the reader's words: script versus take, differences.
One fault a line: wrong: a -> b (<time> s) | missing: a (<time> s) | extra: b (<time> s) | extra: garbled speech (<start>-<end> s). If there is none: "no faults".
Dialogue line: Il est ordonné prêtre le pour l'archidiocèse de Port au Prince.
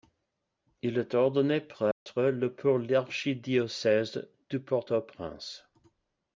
no faults